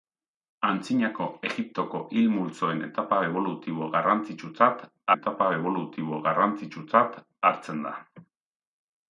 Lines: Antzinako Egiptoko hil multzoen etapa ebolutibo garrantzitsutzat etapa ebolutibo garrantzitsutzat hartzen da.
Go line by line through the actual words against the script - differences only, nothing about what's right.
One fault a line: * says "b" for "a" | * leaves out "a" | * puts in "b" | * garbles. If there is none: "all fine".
all fine